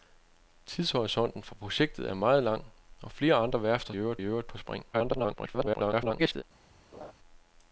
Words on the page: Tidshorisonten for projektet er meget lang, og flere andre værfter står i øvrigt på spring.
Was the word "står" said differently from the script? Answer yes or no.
yes